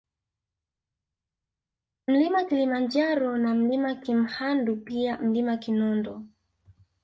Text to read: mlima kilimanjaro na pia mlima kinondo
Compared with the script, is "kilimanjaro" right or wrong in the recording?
right